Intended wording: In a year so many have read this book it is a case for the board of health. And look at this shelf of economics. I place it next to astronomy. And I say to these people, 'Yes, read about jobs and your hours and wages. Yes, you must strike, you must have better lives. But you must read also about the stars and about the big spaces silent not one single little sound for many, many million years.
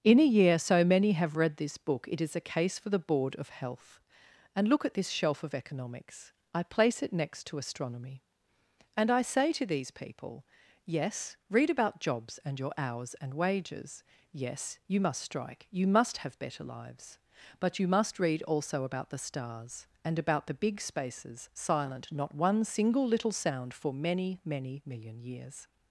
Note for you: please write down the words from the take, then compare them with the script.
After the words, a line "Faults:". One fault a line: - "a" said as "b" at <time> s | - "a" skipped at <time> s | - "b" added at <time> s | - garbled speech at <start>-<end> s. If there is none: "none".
In a year so many have read this book it is a case for the board of health. And look at this shelf of economics. I place it next to astronomy. And I say to these people, 'Yes, read about jobs and your hours and wages. Yes, you must strike, you must have better lives. But you must read also about the stars and about the big spaces silent not one single little sound for many, many million years.
Faults:
none